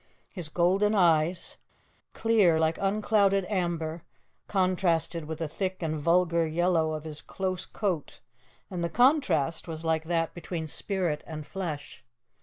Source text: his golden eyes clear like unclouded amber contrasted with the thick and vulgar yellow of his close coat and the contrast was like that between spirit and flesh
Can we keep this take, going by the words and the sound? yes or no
yes